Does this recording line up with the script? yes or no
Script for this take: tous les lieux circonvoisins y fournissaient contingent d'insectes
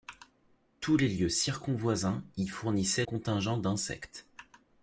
yes